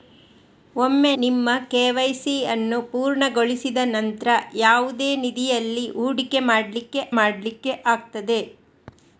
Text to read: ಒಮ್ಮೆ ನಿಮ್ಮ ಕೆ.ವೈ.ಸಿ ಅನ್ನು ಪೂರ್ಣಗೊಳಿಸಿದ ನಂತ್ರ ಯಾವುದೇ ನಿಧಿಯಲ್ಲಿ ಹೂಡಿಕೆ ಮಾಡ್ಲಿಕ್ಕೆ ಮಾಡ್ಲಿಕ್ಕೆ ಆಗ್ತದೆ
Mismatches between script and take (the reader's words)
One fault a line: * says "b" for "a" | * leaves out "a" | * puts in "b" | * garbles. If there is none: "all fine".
all fine